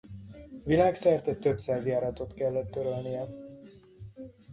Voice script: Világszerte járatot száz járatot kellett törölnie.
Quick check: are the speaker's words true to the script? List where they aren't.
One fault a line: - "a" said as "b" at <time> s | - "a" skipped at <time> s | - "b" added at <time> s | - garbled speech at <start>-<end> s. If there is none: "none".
- "járatot" said as "több" at 1.4 s